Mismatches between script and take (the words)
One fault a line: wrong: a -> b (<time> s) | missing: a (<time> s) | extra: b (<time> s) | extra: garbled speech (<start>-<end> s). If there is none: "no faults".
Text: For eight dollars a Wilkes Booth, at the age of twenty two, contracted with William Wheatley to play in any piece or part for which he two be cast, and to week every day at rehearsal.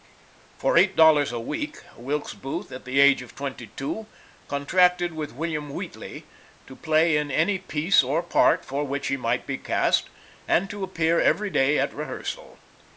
extra: week (1.4 s)
wrong: two -> might (9.2 s)
wrong: week -> appear (10.8 s)